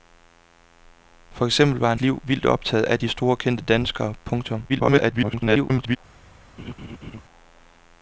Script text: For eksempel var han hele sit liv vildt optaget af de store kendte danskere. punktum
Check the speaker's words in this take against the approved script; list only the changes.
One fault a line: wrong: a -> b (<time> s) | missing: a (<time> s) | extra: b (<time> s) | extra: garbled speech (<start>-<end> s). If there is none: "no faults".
missing: hele sit (2.0 s)
extra: garbled speech (4.7-6.0 s)